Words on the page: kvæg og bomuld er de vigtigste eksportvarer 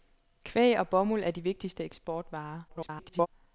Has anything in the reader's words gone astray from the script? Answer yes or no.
yes